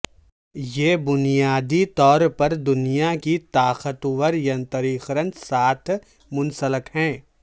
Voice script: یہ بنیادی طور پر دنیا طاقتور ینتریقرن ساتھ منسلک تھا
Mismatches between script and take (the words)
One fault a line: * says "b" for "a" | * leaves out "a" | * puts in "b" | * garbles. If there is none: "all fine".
* puts in "کی"
* says "ہے" for "تھا"